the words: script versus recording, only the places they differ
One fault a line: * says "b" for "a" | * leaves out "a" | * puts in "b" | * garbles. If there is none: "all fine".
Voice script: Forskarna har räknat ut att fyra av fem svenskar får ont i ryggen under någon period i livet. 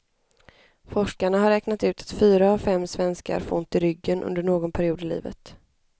all fine